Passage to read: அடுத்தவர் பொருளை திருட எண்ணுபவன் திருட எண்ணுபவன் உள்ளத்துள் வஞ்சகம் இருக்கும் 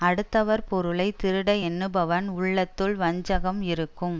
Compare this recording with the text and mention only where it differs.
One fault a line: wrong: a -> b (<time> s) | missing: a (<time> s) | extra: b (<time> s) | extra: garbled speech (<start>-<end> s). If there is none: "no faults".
missing: திருட எண்ணுபவன் (2.3 s)